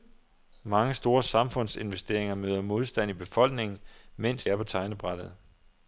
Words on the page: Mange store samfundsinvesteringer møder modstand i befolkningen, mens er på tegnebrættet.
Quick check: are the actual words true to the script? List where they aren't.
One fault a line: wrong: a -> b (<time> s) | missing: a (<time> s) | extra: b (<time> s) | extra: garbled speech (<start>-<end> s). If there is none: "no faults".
no faults